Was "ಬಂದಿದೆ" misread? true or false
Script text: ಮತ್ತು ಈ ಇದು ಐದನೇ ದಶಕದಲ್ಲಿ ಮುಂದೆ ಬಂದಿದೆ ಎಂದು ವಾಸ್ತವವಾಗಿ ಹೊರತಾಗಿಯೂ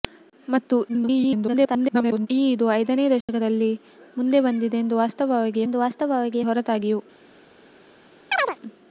false